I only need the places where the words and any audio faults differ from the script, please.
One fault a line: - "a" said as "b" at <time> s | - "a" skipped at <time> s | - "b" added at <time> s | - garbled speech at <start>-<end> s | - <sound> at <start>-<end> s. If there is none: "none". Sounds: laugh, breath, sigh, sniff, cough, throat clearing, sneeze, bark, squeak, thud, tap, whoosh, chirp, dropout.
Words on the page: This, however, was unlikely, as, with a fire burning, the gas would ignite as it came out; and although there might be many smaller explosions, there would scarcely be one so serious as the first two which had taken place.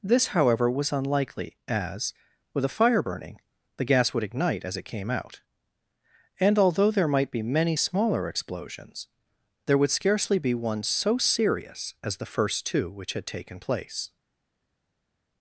none